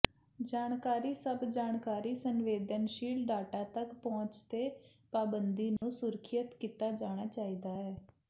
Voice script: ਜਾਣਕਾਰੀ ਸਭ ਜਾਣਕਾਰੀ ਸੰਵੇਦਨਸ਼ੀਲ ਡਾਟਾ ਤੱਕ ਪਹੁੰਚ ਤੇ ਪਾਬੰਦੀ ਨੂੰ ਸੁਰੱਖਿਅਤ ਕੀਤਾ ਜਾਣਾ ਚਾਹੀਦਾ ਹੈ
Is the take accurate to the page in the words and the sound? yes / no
no